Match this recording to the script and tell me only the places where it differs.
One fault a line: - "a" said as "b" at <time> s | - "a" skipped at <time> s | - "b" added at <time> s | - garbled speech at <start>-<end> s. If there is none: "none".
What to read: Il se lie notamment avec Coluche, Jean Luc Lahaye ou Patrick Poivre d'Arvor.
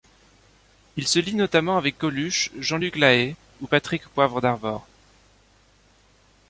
none